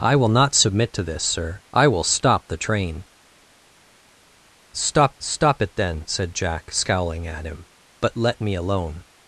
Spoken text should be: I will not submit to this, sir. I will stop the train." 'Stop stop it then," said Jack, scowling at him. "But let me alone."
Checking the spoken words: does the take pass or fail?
pass